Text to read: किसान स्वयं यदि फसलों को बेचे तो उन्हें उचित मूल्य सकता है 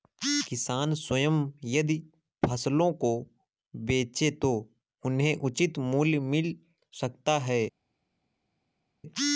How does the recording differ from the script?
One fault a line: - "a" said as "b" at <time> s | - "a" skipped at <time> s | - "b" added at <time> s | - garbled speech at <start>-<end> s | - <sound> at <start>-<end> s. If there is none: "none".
- "मिल" added at 6.2 s